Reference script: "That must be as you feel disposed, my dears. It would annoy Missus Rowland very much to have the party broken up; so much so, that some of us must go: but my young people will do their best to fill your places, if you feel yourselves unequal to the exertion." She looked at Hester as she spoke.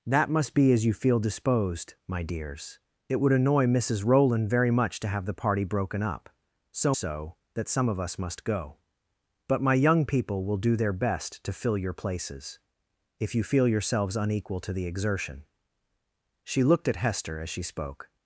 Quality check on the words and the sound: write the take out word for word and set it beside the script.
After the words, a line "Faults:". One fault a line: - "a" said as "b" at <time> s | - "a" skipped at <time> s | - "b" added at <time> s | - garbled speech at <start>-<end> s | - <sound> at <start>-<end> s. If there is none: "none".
"That must be as you feel disposed, my dears. It would annoy Missus Rowland very much to have the party broken up; so so, that some of us must go: but my young people will do their best to fill your places, if you feel yourselves unequal to the exertion." She looked at Hester as she spoke.
Faults:
- "much" skipped at 7.0 s